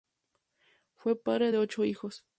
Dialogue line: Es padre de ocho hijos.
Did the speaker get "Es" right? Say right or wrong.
wrong